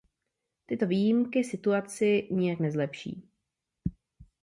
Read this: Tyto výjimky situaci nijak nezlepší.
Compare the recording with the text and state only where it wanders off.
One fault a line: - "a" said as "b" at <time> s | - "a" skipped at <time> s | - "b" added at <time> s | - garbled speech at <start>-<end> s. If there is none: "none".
none